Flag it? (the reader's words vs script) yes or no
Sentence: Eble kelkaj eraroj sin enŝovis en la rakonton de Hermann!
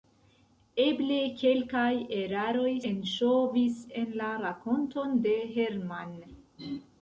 yes